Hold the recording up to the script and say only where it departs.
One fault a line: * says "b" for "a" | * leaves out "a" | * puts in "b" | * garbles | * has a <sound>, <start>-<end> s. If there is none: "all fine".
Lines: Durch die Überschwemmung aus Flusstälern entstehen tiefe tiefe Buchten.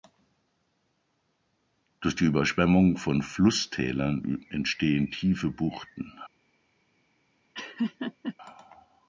* says "von" for "aus"
* leaves out "tiefe"
* has a laugh, 7.5-8.4 s